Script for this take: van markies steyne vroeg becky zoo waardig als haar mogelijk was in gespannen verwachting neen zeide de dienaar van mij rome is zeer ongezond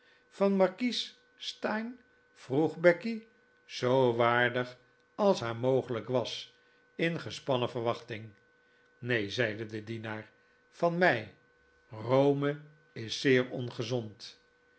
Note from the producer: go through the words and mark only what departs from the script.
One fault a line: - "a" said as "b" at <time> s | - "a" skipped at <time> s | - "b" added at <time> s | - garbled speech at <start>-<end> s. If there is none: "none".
none